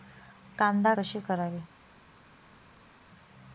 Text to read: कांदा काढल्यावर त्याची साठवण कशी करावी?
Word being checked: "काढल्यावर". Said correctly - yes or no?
no